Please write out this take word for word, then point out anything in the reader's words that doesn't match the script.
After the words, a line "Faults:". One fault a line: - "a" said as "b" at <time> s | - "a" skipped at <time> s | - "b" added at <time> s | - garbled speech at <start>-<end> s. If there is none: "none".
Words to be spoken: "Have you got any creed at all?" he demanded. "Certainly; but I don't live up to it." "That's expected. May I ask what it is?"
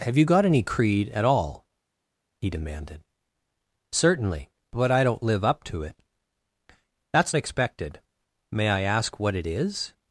"Have you got any creed at all?" he demanded. "Certainly; but I don't live up to it." "That's expected. May I ask what it is?"
Faults:
none